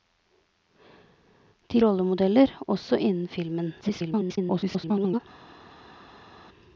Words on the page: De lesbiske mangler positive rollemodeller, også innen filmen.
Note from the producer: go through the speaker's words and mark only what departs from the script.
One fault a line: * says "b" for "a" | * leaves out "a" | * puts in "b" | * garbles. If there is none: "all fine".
* leaves out "lesbiske mangler positive"
* garbles